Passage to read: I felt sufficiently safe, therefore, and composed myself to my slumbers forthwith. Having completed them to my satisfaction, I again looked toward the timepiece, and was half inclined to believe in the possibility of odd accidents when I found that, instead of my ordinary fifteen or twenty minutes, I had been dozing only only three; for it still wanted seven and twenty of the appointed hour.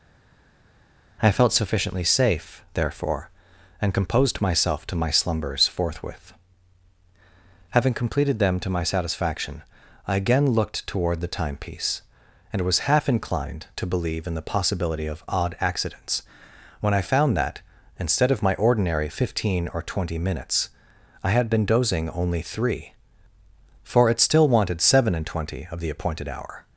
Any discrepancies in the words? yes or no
yes